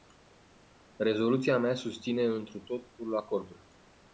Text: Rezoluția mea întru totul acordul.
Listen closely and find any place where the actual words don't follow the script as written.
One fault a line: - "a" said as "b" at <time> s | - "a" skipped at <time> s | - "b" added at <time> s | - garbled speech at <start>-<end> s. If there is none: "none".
- "susține" added at 1.7 s